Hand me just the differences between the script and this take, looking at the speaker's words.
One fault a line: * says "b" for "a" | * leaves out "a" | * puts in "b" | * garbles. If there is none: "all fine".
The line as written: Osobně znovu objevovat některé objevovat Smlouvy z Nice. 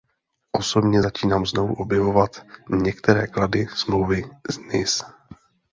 * puts in "začínám"
* says "klady" for "objevovat"